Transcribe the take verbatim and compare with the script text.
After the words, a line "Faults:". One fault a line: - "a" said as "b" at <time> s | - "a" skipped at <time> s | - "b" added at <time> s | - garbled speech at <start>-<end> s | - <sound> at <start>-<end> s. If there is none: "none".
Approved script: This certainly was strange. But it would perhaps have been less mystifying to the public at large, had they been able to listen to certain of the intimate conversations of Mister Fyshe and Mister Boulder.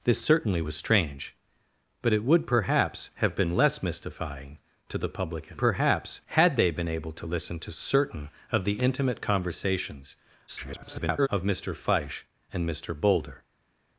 This certainly was strange. But it would perhaps have been less mystifying to the public at perhaps, had they been able to listen to certain of the intimate conversations [garbled] of Mister Fyshe and Mister Boulder.
Faults:
- "large" said as "perhaps" at 5.6 s
- garbled speech at 10.5-11.3 s